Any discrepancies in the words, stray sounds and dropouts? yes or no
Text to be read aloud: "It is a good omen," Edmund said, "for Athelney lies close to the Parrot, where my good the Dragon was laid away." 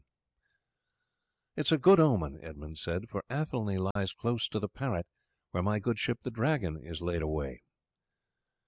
yes